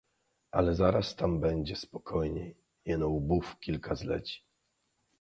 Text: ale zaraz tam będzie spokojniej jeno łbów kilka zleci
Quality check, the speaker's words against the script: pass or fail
pass